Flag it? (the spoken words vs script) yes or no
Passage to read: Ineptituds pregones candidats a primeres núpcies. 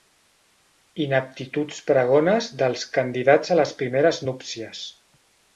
yes